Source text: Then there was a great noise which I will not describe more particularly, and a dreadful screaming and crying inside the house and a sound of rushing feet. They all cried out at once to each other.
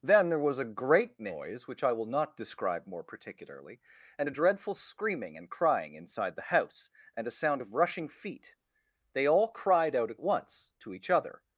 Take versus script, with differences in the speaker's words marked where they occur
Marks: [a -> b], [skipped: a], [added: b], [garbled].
Then there was a great noise which I will not describe more particularly, and a dreadful screaming and crying inside the house and a sound of rushing feet. They all cried out at once to each other.